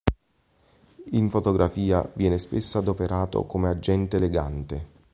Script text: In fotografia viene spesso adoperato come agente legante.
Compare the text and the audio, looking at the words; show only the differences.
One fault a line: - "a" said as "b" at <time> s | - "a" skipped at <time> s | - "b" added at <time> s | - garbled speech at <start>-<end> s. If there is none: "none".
none